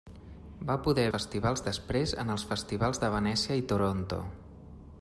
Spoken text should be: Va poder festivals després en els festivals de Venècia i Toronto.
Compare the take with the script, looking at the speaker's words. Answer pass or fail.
pass